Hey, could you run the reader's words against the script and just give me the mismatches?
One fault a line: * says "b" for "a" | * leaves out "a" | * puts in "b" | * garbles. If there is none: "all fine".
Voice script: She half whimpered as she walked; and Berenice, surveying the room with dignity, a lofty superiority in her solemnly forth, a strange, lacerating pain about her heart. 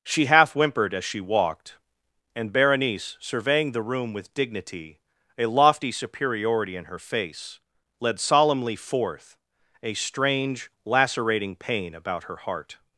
* puts in "face led"